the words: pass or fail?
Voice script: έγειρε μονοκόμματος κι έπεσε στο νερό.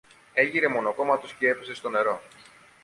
pass